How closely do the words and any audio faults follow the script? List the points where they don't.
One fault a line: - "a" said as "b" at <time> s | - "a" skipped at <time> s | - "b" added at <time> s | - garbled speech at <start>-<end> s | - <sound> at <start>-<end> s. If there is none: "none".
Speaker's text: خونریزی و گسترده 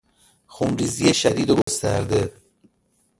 - "شدید" added at 1.1 s
- dropout at 1.6-1.7 s